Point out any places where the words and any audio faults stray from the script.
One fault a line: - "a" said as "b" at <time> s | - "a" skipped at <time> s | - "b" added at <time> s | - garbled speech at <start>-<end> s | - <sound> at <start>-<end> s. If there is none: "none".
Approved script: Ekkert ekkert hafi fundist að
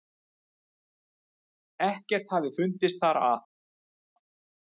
- "ekkert" skipped at 2.3 s
- "þar" added at 3.0 s